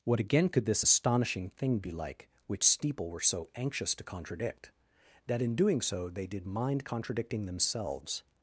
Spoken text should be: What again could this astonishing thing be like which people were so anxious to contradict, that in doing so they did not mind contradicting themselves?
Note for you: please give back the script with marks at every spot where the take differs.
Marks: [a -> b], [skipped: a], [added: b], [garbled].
What again could this astonishing thing be like which [people -> steeple] were so anxious to contradict, that in doing so they did [skipped: not] mind contradicting themselves?